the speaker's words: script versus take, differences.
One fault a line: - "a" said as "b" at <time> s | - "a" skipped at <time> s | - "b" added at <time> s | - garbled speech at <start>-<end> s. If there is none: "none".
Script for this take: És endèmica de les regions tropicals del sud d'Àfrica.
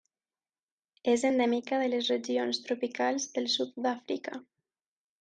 none